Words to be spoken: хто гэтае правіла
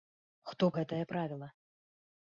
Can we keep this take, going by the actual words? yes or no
yes